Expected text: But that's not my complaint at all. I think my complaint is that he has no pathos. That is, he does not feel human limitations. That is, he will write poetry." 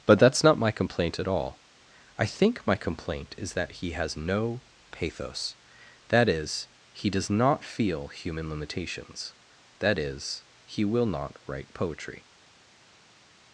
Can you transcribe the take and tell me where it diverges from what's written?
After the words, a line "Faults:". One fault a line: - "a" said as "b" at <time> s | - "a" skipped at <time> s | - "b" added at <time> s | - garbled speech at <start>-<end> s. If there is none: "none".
But that's not my complaint at all. I think my complaint is that he has no pathos. That is, he does not feel human limitations. That is, he will not write poetry."
Faults:
- "not" added at 11.1 s